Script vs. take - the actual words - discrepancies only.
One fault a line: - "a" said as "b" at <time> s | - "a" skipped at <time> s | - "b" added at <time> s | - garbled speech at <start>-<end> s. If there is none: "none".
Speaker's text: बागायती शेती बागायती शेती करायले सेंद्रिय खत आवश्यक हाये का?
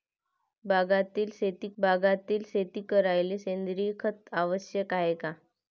none